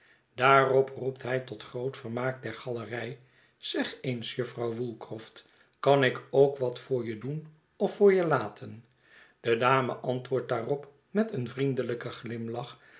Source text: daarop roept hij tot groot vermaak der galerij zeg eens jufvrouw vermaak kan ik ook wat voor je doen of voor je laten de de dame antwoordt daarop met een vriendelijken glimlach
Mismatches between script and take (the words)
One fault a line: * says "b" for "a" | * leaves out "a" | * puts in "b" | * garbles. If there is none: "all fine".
* says "woolcroft" for "vermaak"
* leaves out "de"